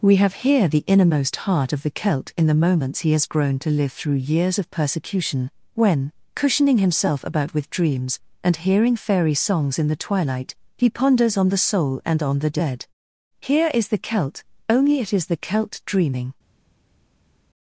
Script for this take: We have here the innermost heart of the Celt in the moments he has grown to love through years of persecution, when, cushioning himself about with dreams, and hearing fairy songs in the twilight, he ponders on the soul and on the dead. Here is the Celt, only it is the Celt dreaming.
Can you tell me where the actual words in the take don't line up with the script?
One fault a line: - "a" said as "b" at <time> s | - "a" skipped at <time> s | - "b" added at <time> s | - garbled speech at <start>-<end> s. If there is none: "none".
- "love" said as "live" at 3.7 s